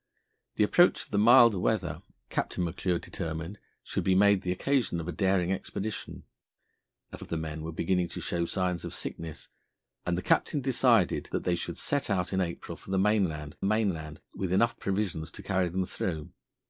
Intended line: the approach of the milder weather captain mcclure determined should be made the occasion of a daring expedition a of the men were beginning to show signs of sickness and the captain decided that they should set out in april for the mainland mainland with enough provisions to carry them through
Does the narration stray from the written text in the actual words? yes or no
no